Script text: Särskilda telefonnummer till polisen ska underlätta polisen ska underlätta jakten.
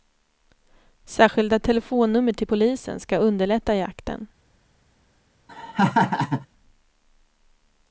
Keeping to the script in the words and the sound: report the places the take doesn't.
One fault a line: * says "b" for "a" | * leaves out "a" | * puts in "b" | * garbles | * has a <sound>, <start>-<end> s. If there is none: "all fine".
* leaves out "polisen ska underlätta"
* has a laugh, 5.5-6.5 s